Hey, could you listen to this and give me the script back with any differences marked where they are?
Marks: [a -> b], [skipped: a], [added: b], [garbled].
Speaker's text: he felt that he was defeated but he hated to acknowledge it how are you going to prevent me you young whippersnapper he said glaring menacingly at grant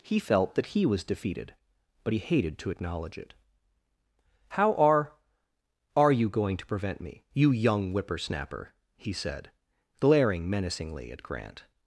he felt that he was defeated but he hated to acknowledge it how are [added: are] you going to prevent me you young whippersnapper he said glaring menacingly at grant